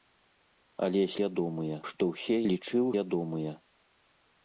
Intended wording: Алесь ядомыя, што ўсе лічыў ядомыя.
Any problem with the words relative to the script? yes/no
no